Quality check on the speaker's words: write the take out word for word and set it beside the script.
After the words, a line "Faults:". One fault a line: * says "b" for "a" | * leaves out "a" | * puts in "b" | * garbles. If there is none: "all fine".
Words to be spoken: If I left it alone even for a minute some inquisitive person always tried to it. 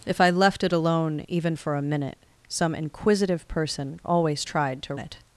If I left it alone even for a minute some inquisitive person always tried to it.
Faults:
all fine